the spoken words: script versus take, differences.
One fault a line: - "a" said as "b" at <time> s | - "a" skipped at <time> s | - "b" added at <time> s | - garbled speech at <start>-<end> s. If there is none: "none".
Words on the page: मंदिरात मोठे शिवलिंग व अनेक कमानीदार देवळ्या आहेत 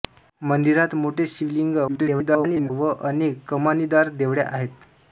- garbled speech at 1.9-2.7 s